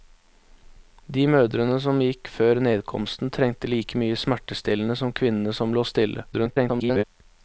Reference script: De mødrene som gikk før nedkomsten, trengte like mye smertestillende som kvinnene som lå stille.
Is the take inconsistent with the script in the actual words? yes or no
yes